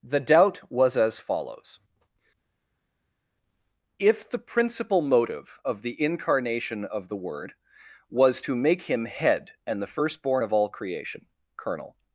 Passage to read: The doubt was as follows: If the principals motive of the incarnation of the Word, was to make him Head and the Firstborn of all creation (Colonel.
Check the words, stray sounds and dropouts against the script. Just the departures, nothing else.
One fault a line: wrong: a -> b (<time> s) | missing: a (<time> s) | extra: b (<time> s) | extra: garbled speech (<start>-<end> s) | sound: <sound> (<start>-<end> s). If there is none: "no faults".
wrong: principals -> principal (4.4 s)